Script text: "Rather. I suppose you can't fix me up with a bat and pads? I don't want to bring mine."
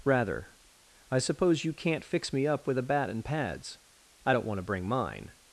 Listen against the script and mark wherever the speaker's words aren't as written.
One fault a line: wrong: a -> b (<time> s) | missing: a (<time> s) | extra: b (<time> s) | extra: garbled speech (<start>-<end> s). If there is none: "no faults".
no faults